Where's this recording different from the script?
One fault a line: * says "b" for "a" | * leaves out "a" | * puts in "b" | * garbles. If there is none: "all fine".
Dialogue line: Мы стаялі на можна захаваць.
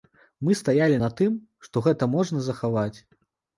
* puts in "тым што гэта"